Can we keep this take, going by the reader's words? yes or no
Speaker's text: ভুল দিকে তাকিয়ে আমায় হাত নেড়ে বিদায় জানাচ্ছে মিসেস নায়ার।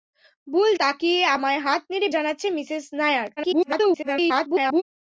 no